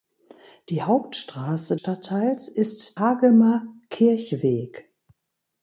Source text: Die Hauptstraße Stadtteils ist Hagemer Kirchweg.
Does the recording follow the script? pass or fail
pass